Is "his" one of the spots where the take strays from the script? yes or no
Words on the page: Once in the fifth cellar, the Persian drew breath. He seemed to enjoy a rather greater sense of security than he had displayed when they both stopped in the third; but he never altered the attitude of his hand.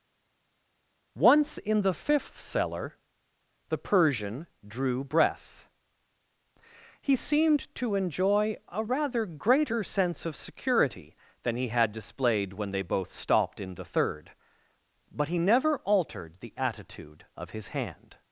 no